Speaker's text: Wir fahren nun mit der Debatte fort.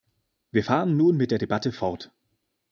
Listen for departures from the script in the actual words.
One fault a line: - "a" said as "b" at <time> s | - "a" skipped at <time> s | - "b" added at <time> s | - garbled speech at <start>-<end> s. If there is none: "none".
none